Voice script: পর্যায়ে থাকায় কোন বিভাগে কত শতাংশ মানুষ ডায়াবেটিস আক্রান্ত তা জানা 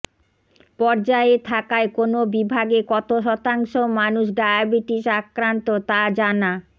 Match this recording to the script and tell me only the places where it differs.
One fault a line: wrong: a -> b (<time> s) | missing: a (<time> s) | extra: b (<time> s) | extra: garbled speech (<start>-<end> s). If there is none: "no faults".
no faults